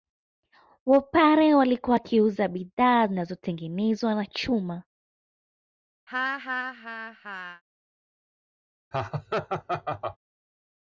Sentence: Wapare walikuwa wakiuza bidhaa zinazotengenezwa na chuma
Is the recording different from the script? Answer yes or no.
no